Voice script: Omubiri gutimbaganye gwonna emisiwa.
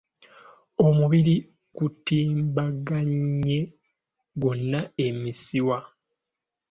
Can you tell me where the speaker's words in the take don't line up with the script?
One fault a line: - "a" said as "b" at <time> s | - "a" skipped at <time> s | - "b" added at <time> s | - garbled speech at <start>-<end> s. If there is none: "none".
none